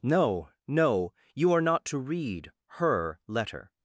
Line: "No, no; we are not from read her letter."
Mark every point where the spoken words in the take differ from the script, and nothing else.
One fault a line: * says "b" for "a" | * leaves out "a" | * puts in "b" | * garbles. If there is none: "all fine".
* says "you" for "we"
* says "to" for "from"